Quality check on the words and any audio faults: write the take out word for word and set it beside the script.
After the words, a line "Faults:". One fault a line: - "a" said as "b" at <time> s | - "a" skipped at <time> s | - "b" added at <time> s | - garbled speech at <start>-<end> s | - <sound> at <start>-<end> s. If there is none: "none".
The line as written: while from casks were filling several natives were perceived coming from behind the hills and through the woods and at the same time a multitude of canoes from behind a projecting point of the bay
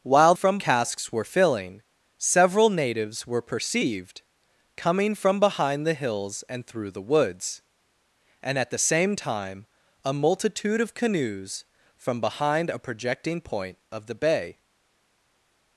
while from casks were filling several natives were perceived coming from behind the hills and through the woods and at the same time a multitude of canoes from behind a projecting point of the bay
Faults:
none